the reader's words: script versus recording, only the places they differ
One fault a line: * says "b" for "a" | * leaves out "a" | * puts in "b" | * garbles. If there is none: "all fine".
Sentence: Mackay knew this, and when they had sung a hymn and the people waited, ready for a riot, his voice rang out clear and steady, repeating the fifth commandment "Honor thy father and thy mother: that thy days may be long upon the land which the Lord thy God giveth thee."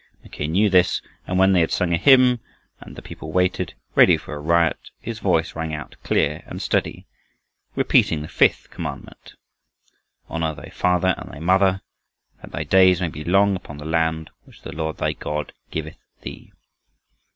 all fine